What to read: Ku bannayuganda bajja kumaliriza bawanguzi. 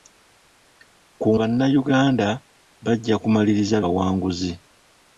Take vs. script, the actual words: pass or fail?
pass